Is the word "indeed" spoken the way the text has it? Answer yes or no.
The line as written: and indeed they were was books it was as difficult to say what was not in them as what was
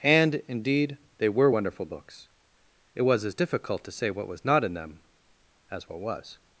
yes